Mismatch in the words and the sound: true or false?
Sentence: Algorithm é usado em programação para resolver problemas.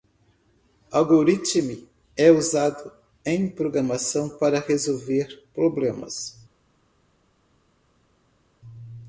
false